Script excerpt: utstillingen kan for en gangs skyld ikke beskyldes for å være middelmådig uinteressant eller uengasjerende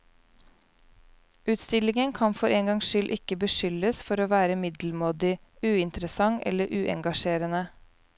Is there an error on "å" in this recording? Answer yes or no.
no